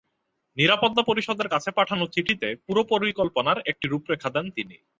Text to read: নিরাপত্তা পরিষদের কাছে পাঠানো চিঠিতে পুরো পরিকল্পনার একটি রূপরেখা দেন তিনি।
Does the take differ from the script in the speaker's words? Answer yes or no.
no